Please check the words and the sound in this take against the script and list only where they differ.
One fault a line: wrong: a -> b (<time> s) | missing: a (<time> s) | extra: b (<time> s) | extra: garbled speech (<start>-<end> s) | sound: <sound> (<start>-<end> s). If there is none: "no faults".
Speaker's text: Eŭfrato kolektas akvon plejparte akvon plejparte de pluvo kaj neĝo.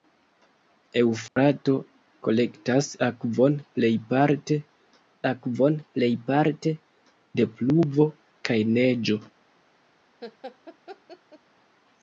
sound: dropout (1.3-1.4 s)
sound: laugh (10.2-11.4 s)